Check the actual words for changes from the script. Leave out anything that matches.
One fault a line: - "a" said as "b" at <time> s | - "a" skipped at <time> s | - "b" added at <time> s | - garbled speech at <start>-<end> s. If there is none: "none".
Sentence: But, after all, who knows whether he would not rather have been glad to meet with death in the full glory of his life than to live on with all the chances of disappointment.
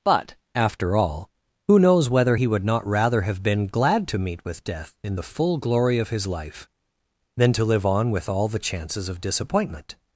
none